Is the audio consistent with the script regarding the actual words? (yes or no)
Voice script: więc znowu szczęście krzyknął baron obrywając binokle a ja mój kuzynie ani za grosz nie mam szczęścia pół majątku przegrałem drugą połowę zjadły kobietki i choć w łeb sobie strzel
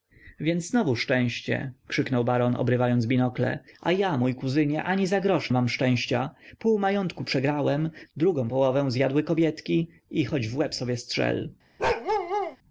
no